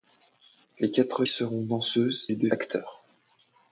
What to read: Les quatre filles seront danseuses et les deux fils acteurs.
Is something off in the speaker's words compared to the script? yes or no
yes